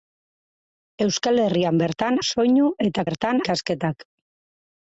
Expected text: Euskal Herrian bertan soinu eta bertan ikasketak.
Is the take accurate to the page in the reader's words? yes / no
yes